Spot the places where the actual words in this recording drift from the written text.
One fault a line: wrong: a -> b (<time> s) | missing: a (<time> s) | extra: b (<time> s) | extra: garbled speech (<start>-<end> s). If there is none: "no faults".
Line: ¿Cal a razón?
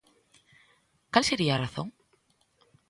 extra: sería (1.2 s)